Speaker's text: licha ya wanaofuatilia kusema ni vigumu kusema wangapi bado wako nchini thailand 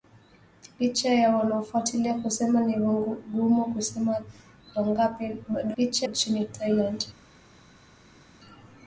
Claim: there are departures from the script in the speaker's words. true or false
true